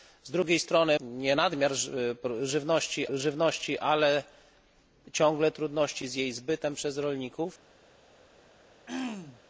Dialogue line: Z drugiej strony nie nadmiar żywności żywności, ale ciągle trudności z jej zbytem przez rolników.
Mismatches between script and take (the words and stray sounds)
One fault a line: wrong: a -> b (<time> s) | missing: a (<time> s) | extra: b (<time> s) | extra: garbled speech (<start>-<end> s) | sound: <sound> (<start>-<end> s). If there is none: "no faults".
sound: throat clearing (8.9-9.4 s)